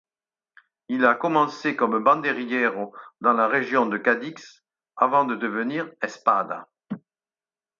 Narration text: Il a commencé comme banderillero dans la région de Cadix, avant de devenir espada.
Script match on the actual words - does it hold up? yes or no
yes